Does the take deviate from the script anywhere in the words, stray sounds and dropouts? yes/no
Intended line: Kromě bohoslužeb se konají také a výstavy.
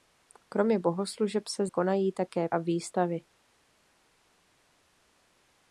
no